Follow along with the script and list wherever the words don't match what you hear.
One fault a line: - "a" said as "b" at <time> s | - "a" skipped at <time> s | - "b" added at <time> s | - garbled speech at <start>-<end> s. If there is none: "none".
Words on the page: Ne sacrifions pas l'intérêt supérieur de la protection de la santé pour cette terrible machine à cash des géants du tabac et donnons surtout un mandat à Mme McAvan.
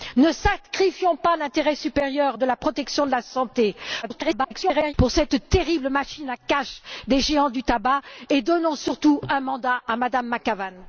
- garbled speech at 4.0-4.9 s